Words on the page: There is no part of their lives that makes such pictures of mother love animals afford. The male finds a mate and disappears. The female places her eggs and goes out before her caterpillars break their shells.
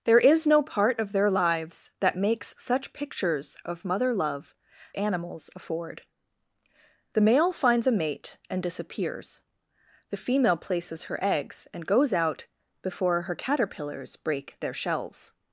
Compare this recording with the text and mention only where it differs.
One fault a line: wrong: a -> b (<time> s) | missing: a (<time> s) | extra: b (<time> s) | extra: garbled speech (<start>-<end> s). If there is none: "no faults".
no faults